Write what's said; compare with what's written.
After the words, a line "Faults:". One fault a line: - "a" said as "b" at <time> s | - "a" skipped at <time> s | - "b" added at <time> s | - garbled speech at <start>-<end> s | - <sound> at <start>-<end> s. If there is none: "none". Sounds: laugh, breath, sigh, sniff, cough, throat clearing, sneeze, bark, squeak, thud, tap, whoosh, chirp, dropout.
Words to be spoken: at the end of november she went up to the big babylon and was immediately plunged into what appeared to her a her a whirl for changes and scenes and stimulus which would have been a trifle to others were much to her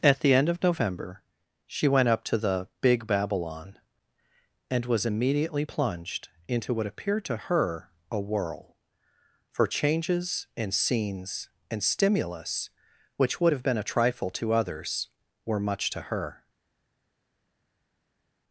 at the end of november she went up to the big babylon and was immediately plunged into what appeared to her a whirl for changes and scenes and stimulus which would have been a trifle to others were much to her
Faults:
- "her a" skipped at 8.2 s